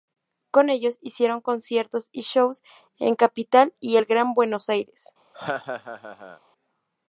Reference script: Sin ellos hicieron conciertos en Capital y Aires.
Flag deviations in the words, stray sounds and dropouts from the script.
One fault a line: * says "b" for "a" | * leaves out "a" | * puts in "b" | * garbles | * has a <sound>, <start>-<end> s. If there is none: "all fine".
* says "Con" for "Sin"
* puts in "y shows"
* puts in "el Gran Buenos"
* has a laugh, 5.3-6.4 s